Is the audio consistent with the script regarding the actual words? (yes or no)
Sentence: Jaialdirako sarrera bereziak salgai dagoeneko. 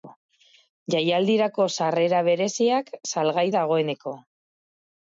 yes